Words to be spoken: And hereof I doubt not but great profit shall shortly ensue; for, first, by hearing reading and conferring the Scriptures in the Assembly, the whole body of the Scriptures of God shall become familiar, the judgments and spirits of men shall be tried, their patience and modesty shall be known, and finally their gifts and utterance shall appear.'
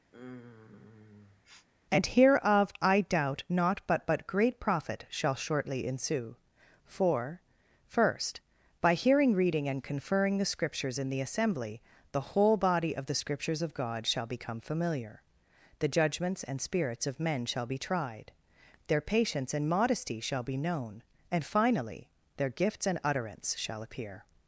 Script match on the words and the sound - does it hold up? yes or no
no